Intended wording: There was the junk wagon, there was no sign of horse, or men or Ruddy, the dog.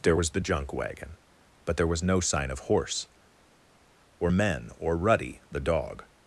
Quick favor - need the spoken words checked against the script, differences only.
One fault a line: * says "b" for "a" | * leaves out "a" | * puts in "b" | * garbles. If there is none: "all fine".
* puts in "but"